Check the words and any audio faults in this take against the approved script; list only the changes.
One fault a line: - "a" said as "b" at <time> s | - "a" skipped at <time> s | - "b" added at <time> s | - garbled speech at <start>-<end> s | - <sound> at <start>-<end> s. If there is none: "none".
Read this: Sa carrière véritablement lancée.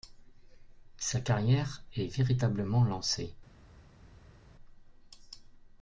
- "est" added at 1.9 s